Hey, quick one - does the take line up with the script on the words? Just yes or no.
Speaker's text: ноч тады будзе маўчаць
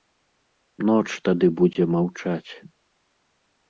yes